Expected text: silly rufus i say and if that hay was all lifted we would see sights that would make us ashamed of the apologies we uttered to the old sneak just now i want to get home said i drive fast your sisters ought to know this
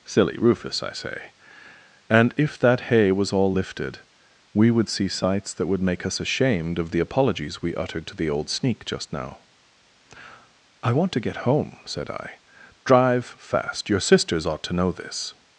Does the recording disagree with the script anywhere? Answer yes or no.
no